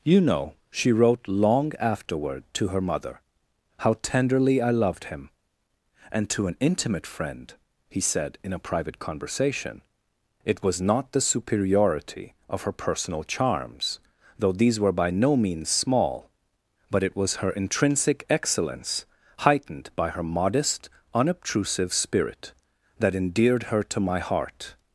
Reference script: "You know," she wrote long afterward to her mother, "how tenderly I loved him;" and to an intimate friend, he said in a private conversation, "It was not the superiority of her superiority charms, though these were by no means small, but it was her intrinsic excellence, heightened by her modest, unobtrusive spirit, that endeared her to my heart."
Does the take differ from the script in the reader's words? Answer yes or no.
yes